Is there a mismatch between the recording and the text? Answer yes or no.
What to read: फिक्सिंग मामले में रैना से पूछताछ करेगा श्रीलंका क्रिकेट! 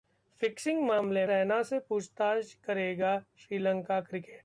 yes